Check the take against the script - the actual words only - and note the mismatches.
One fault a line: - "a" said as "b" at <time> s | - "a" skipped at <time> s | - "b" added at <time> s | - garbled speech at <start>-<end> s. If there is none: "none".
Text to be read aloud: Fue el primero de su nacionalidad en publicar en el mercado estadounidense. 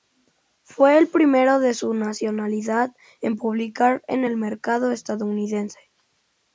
none